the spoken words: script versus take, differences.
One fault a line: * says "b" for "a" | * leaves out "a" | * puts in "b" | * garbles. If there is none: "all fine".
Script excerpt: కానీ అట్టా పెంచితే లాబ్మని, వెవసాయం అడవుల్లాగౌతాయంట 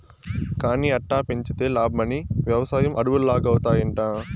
all fine